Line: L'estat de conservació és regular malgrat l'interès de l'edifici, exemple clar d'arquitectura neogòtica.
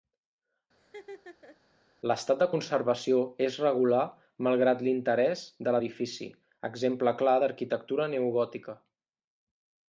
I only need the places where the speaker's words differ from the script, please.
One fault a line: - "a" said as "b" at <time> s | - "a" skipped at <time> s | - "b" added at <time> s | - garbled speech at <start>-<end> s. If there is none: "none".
none